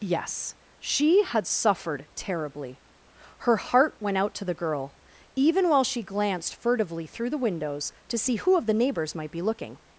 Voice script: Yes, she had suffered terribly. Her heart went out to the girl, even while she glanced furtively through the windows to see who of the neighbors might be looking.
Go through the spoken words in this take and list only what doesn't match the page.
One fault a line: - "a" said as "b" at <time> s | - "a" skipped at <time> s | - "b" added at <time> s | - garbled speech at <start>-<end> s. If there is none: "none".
none